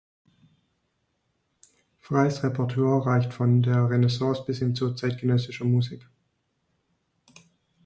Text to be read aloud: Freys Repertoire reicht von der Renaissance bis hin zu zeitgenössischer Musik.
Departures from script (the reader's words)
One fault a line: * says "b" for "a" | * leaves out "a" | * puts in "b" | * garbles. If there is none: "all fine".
all fine